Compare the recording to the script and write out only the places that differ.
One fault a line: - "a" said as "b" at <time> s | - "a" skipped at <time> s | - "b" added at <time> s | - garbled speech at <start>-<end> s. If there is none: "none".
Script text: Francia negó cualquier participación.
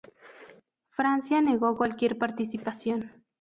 none